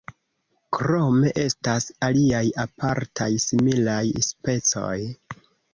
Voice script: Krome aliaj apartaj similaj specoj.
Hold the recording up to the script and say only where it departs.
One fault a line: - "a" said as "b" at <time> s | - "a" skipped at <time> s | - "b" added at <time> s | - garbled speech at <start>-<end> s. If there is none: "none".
- "estas" added at 1.4 s